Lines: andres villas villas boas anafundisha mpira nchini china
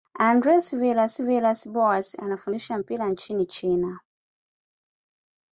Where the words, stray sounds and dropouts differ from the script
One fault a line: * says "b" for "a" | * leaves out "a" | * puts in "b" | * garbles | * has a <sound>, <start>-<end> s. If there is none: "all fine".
all fine